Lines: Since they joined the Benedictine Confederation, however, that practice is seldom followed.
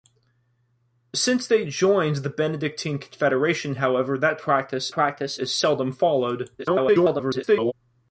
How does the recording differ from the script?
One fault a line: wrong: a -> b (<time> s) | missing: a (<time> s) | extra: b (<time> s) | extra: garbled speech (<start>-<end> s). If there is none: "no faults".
extra: practice (4.9 s)
extra: garbled speech (6.6-7.7 s)